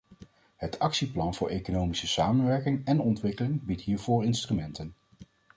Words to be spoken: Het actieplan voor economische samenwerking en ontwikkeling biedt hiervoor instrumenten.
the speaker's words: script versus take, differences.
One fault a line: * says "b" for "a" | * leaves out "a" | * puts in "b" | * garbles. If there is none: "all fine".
all fine